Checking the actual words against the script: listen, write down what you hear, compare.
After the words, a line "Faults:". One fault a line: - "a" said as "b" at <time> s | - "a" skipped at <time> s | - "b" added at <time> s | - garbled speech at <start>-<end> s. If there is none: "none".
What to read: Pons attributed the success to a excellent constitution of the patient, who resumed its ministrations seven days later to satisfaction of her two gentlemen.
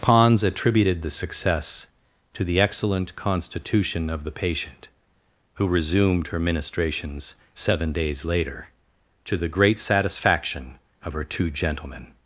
Pons attributed the success to the excellent constitution of the patient, who resumed her ministrations seven days later to the great satisfaction of her two gentlemen.
Faults:
- "a" said as "the" at 2.4 s
- "its" said as "her" at 6.3 s
- "the great" added at 9.4 s